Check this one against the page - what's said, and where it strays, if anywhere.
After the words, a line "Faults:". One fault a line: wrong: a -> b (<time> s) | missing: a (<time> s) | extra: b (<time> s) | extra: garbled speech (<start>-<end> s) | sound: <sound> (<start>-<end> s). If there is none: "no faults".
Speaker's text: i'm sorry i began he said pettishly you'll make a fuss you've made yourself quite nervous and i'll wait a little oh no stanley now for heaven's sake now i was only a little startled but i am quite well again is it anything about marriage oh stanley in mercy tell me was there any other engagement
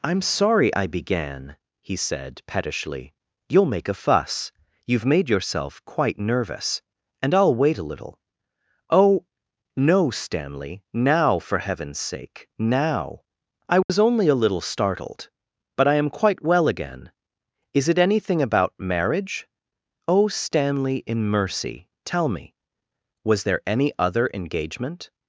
i'm sorry i began he said pettishly you'll make a fuss you've made yourself quite nervous and i'll wait a little oh no stanley now for heaven's sake now i was only a little startled but i am quite well again is it anything about marriage oh stanley in mercy tell me was there any other engagement
Faults:
sound: dropout (13.8-13.9 s)